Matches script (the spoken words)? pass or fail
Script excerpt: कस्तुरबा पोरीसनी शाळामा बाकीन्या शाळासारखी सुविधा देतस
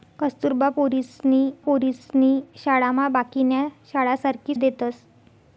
fail